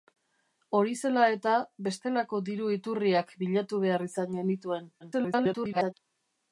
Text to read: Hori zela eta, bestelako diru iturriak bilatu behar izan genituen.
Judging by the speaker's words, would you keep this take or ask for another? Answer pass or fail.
fail